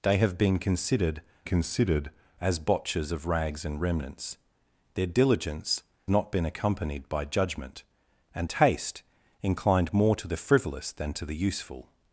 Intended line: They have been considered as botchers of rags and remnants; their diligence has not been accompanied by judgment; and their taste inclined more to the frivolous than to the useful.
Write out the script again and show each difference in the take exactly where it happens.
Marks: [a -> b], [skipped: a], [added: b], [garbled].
They have been considered [added: considered] as botchers of rags and remnants; their diligence [skipped: has] not been accompanied by judgment; and [skipped: their] taste inclined more to the frivolous than to the useful.